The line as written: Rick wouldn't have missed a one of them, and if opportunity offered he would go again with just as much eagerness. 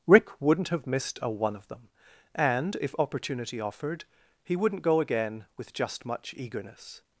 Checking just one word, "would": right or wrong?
wrong